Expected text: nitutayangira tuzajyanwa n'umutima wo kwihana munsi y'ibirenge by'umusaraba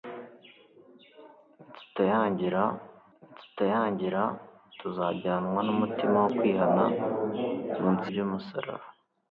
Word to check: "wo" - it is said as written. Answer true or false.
true